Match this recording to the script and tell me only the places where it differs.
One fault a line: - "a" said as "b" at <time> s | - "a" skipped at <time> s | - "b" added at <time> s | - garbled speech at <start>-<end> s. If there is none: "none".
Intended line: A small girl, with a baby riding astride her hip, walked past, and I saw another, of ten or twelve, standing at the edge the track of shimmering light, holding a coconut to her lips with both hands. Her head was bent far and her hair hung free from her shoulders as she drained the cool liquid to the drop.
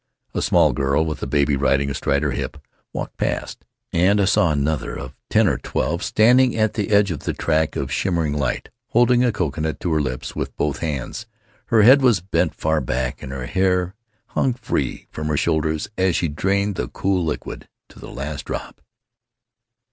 - "of" added at 7.1 s
- "back" added at 12.8 s
- "last" added at 18.1 s